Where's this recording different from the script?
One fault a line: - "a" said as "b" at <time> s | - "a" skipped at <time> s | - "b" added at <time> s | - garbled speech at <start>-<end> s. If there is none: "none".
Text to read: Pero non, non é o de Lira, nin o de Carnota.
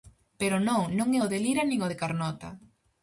none